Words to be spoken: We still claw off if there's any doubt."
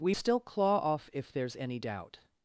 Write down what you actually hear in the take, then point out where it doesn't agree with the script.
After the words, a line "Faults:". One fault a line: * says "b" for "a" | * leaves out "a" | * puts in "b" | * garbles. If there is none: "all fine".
We still claw off if there's any doubt."
Faults:
all fine